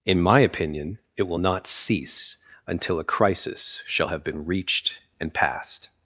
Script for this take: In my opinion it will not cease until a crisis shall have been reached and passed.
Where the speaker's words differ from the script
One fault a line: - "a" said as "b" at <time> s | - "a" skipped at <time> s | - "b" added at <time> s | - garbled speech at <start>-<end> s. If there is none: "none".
none